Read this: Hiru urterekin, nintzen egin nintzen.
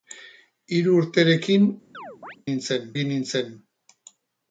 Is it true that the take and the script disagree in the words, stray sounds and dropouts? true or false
true